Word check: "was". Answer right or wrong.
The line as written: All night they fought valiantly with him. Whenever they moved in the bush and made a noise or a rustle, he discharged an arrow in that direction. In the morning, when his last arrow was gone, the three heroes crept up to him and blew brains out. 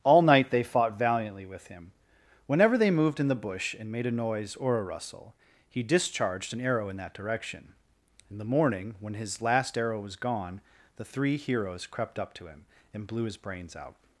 right